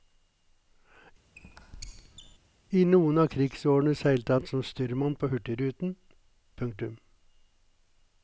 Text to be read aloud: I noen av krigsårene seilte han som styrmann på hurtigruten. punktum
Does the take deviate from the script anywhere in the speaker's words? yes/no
no